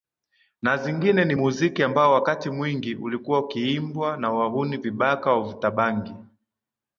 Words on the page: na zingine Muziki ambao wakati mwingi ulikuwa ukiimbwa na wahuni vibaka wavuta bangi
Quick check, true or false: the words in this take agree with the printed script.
false